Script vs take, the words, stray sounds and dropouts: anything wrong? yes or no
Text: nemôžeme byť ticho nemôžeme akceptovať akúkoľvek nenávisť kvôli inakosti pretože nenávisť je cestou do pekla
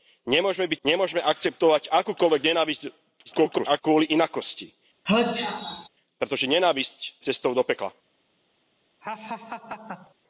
yes